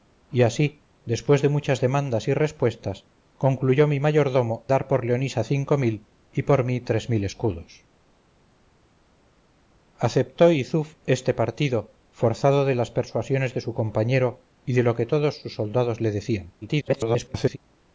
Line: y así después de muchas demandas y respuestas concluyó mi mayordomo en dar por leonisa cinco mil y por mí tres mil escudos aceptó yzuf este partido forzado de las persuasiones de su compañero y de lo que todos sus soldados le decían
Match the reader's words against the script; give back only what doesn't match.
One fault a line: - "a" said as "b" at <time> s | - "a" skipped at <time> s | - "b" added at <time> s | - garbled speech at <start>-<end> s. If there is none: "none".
- "en" skipped at 4.7 s
- garbled speech at 16.6-17.6 s